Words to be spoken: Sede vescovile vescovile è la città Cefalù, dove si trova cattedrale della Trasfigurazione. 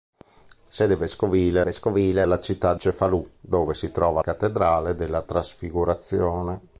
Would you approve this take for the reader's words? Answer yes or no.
yes